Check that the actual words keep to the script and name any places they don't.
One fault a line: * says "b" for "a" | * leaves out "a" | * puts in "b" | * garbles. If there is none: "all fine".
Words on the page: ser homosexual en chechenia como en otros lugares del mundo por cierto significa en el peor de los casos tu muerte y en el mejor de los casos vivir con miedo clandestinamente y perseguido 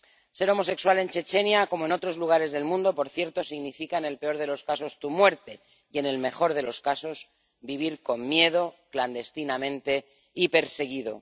all fine